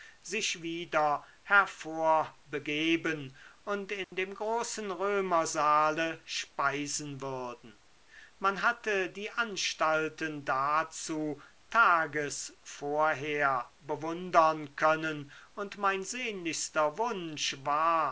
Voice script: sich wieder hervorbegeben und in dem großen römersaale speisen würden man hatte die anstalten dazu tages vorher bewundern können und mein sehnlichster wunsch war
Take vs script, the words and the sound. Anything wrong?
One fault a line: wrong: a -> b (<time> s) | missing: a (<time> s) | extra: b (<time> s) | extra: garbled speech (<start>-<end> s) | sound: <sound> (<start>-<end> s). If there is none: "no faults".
sound: dropout (4.0-4.1 s)